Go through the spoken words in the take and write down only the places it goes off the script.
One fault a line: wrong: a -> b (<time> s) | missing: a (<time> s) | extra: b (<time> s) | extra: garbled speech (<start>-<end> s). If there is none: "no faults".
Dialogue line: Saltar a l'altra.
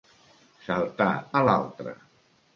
no faults